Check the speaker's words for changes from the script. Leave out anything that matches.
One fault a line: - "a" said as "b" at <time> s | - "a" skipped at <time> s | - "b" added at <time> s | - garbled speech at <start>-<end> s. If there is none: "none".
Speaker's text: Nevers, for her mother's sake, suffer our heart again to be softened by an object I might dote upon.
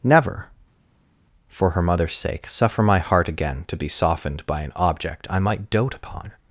- "Nevers" said as "Never" at 0.0 s
- "our" said as "my" at 2.8 s